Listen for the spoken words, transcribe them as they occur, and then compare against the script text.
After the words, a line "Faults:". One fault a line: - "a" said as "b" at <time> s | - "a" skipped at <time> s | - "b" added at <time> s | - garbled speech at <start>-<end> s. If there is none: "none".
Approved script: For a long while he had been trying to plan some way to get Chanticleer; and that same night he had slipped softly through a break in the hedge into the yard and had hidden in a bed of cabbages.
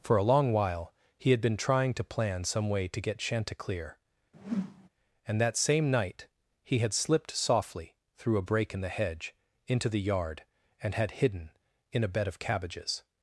For a long while he had been trying to plan some way to get Chanticleer; and that same night he had slipped softly through a break in the hedge into the yard and had hidden in a bed of cabbages.
Faults:
none